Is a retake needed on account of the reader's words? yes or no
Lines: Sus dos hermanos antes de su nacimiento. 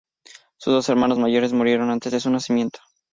yes